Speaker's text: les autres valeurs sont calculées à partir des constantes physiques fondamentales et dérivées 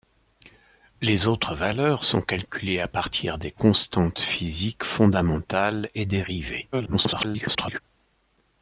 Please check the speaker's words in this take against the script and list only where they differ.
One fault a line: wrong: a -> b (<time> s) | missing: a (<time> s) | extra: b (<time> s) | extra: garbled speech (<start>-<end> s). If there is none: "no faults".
extra: garbled speech (6.7-7.8 s)